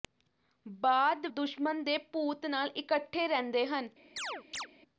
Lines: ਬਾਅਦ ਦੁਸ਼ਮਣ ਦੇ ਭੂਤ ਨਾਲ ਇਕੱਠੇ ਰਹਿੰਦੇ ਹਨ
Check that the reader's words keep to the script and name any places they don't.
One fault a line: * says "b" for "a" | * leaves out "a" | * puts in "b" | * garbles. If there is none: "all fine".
all fine